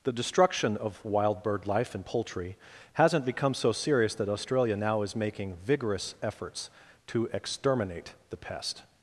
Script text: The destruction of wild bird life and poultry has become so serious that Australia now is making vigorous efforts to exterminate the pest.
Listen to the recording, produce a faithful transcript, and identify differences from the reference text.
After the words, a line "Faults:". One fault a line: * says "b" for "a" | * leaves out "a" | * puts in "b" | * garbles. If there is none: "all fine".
The destruction of wild bird life and poultry hasn't become so serious that Australia now is making vigorous efforts to exterminate the pest.
Faults:
* says "hasn't" for "has"